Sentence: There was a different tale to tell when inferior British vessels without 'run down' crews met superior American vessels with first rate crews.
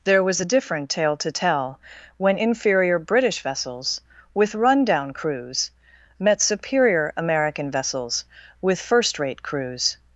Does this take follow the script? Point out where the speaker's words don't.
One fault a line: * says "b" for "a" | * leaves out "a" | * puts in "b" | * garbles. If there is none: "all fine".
* says "with" for "without"